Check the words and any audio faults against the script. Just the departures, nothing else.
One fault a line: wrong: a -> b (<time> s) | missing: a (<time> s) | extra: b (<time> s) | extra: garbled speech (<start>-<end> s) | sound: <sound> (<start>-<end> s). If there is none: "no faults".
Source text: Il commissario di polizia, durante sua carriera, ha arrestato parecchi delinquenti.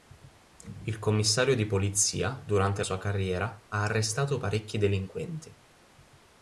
no faults